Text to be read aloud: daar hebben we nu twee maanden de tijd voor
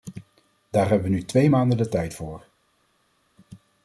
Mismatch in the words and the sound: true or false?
false